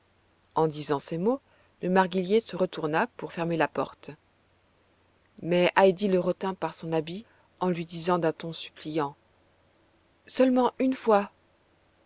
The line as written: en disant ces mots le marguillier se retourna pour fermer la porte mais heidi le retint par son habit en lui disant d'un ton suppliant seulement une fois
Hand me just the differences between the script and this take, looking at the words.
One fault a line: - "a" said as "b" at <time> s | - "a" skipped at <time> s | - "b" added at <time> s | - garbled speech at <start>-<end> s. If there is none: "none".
none